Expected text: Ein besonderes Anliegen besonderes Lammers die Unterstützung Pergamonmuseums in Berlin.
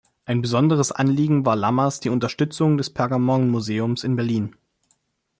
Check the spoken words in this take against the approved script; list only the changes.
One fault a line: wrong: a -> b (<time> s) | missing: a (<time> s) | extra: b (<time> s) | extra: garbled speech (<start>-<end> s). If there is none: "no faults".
wrong: besonderes -> war (1.4 s)
extra: des (2.8 s)